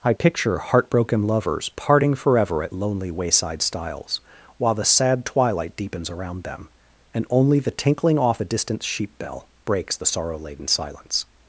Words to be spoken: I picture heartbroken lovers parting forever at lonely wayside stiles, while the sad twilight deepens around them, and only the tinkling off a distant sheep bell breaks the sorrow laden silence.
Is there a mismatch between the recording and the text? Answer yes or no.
no